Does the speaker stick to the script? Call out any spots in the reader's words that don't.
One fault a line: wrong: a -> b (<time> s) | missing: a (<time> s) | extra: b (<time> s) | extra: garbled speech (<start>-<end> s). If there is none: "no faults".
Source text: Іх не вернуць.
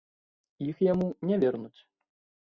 extra: яму (0.8 s)